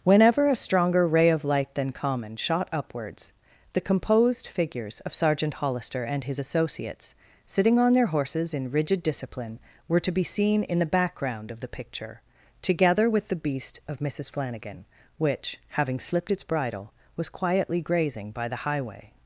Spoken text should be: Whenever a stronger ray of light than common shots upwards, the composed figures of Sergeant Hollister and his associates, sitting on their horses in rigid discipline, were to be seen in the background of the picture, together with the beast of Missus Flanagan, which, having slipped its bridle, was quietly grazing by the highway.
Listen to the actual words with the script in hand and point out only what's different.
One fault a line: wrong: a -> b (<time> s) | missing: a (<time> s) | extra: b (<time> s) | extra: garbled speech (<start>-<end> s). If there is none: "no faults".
wrong: shots -> shot (2.4 s)